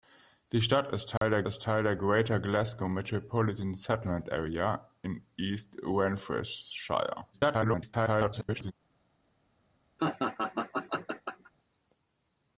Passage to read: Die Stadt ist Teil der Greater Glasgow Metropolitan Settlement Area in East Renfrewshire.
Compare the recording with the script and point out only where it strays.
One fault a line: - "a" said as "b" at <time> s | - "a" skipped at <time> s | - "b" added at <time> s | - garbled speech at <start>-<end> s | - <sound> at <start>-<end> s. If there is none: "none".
- dropout at 1.2-1.2 s
- "ist Teil der" added at 1.4 s
- garbled speech at 7.3-8.7 s
- laugh at 10.0-11.5 s